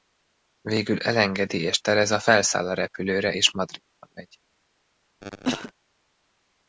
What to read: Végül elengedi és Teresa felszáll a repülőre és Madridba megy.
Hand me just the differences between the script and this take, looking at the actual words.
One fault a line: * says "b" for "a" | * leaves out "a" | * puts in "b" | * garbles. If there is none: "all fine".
all fine